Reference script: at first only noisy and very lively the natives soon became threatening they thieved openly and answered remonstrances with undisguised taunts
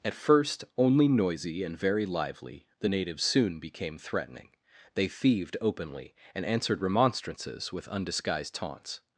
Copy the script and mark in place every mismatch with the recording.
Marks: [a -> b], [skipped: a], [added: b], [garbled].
at first only noisy and very lively the natives soon became threatening they thieved openly and answered remonstrances with undisguised taunts